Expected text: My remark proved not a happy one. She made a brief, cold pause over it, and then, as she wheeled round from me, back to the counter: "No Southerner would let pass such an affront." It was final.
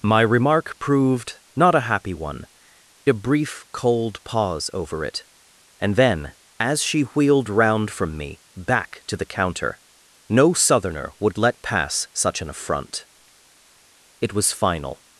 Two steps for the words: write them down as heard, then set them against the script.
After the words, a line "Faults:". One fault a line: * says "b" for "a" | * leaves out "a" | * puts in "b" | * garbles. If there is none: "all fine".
My remark proved not a happy one. A brief, cold pause over it, and then, as she wheeled round from me, back to the counter: "No Southerner would let pass such an affront." It was final.
Faults:
* leaves out "She made"